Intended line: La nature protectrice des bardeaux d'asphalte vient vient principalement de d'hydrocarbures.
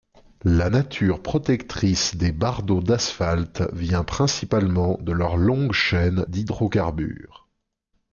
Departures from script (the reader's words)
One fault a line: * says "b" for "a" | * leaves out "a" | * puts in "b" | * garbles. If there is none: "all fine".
* leaves out "vient"
* puts in "leur longue chaîne"